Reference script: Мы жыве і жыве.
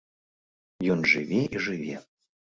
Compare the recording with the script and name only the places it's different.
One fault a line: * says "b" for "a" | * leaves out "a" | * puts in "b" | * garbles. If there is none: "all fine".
* says "Ён" for "Мы"